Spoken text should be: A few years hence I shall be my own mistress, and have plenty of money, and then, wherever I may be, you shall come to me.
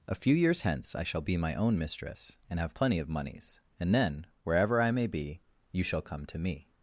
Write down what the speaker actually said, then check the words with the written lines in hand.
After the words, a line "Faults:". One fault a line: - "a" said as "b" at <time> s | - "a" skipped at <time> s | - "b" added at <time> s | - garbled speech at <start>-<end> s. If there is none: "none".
A few years hence I shall be my own mistress, and have plenty of moneys, and then, wherever I may be, you shall come to me.
Faults:
- "money" said as "moneys" at 3.1 s